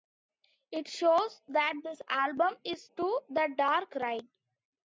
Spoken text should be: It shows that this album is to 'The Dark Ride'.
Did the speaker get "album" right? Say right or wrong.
right